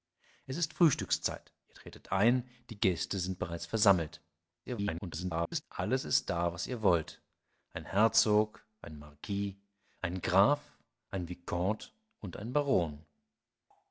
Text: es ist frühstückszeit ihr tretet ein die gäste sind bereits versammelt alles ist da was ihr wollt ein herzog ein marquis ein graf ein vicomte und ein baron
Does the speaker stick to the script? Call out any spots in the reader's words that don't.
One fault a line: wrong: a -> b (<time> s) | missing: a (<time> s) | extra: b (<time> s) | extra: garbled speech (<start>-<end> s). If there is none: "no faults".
extra: garbled speech (4.7-5.6 s)